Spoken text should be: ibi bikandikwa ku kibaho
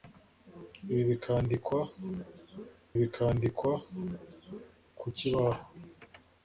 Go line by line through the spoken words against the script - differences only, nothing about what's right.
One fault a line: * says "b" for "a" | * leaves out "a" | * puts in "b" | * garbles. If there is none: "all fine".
* puts in "bikandikwa"